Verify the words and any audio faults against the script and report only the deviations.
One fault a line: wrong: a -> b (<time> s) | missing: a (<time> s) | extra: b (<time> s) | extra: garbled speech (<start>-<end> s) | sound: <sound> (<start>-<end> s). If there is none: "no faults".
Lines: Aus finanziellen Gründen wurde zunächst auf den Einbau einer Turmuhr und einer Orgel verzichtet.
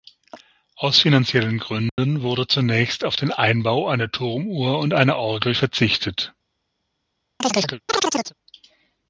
sound: dropout (1.9-2.0 s)
sound: chirp (7.4-8.3 s)